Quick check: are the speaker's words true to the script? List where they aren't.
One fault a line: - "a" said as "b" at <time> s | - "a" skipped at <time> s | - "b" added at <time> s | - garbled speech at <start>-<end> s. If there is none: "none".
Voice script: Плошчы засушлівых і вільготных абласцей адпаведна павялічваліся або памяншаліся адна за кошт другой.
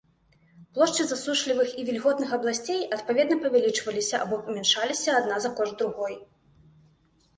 none